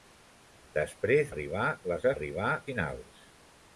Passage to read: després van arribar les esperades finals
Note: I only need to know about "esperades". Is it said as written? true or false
false